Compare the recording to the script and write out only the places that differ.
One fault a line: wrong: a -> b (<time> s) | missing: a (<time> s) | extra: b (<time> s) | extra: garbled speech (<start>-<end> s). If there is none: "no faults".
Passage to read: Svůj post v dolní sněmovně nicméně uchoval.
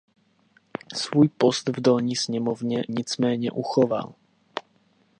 no faults